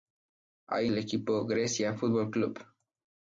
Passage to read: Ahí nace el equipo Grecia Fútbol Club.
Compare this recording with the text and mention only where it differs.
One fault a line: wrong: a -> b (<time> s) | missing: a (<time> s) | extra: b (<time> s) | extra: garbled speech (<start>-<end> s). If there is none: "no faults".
missing: nace (0.9 s)